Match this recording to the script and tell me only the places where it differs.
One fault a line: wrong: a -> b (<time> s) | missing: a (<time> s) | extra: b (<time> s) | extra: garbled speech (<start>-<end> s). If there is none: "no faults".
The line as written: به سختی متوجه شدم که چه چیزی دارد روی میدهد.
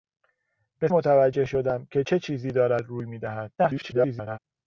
missing: سختی (0.9 s)
extra: garbled speech (3.6-4.4 s)